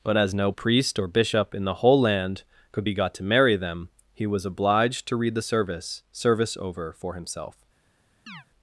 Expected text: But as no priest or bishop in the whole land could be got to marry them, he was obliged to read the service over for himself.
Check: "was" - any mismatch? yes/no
no